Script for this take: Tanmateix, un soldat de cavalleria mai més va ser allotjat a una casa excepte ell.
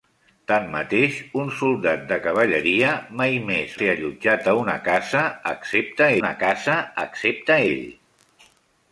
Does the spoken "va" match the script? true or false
false